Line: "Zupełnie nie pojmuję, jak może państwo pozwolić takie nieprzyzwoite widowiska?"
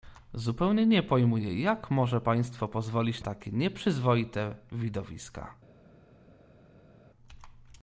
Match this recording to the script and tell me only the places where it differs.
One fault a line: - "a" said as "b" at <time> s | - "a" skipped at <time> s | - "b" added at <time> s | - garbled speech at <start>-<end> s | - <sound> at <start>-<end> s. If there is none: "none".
none